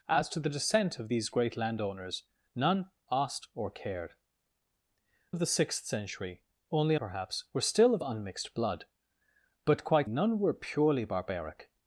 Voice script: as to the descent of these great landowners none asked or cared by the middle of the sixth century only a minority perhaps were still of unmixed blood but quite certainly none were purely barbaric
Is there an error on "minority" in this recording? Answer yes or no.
yes